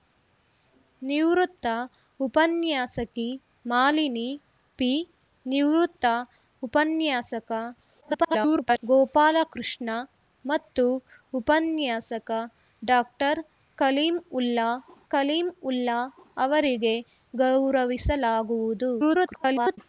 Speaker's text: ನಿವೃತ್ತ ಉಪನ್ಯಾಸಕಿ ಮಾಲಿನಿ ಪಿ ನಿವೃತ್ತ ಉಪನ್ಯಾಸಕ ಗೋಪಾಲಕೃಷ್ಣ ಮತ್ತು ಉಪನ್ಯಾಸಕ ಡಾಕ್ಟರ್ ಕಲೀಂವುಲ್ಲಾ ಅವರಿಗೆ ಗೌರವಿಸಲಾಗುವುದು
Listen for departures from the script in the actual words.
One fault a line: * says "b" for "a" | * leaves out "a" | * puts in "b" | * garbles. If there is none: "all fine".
* garbles
* puts in "ಕಲೀಂವುಲ್ಲಾ"
* garbles